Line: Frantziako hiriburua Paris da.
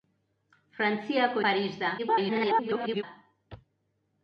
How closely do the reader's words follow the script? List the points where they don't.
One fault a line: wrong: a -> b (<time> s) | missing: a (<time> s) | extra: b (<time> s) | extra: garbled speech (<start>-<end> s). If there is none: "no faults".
missing: hiriburua (1.4 s)
extra: garbled speech (2.0-3.0 s)